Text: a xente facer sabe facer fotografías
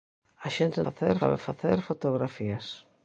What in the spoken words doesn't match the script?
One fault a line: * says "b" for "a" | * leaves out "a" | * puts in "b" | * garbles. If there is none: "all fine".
all fine